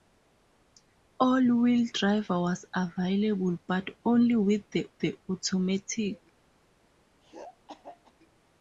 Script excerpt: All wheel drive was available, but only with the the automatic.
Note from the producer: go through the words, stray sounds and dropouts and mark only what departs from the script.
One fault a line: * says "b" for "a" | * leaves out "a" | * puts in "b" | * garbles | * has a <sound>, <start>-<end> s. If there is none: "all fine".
* has a throat clearing, 7.2-8.1 s